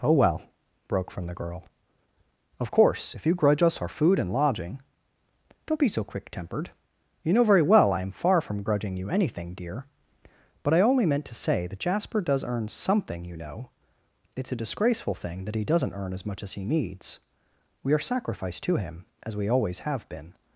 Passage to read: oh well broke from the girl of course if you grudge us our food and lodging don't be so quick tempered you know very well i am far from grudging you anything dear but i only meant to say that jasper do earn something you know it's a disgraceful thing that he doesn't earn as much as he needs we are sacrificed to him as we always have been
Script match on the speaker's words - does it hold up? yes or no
no